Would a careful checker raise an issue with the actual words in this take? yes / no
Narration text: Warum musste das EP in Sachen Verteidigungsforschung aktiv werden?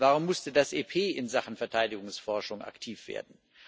no